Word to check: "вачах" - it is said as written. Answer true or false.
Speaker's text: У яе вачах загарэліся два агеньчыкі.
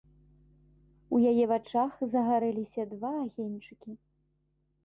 true